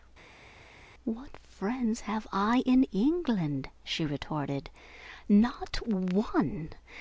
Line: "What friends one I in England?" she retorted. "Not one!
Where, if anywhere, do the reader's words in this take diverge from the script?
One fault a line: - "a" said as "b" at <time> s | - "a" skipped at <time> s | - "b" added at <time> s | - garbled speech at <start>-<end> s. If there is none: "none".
- "one" said as "have" at 2.1 s